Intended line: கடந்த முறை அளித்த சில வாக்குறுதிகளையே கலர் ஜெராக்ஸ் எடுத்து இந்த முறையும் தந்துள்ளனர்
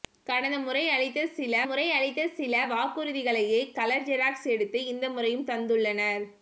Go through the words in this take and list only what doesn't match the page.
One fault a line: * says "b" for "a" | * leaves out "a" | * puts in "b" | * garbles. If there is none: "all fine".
* puts in "முறை அளித்த சில"